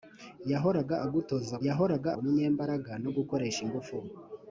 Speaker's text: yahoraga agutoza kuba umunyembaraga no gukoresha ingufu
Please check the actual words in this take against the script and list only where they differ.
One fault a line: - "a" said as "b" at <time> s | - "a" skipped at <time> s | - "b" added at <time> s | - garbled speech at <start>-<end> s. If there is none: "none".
- "kuba" said as "yahoraga" at 1.7 s